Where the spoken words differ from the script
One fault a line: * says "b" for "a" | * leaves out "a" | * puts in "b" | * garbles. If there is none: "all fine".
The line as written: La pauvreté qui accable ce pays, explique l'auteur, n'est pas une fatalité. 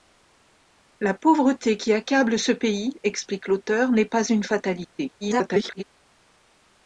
* garbles